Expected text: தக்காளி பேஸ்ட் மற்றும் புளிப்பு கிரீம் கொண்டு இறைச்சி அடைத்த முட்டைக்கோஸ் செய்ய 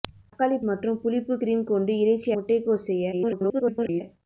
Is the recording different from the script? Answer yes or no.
yes